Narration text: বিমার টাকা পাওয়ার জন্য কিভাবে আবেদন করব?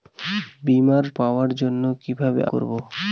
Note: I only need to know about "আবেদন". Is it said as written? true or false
false